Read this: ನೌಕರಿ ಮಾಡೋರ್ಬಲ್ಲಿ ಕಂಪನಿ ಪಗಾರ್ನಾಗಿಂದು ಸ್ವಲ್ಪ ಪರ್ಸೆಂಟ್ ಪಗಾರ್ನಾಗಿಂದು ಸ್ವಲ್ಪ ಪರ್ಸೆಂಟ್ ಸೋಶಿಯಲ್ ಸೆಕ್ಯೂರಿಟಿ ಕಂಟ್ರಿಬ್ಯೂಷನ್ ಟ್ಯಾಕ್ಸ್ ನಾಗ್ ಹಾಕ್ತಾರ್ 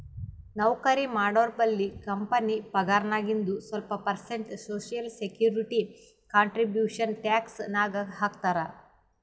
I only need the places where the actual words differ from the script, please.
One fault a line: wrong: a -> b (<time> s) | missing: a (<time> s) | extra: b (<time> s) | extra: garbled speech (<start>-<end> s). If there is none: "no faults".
missing: ಪಗಾರ್ನಾಗಿಂದು ಸ್ವಲ್ಪ ಪರ್ಸೆಂಟ್ (4.5 s)